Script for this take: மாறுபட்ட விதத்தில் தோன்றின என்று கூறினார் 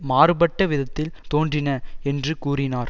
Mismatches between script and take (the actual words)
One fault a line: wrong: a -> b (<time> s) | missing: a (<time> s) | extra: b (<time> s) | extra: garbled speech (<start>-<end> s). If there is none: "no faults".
no faults